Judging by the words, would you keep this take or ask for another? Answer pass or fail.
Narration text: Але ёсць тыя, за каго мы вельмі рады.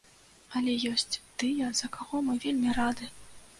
pass